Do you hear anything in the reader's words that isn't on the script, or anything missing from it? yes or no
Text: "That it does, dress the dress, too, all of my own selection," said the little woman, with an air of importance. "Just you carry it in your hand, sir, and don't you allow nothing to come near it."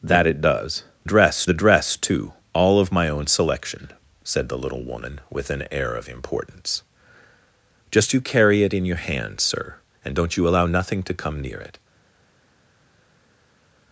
no